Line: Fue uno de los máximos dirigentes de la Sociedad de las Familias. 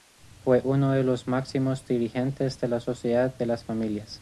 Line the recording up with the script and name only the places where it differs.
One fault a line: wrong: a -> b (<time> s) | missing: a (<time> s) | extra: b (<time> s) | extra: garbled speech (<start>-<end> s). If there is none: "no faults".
no faults